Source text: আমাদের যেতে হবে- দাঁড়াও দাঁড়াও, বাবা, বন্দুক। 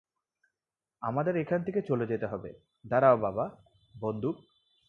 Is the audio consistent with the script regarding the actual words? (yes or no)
no